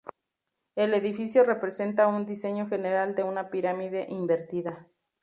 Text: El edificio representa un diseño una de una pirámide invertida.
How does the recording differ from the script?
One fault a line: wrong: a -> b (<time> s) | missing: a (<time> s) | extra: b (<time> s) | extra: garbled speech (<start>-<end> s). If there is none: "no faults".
wrong: una -> general (2.7 s)